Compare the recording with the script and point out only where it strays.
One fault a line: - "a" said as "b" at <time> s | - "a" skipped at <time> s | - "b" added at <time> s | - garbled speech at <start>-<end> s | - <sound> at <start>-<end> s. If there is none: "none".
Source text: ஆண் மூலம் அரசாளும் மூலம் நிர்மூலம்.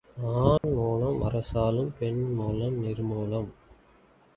- dropout at 0.6-0.6 s
- "பெண்" added at 2.0 s